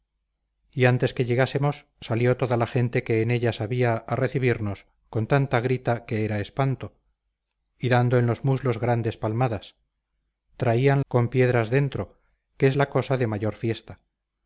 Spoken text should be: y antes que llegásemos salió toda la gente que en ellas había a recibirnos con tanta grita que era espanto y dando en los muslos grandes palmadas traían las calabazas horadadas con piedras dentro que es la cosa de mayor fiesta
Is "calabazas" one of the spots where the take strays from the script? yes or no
yes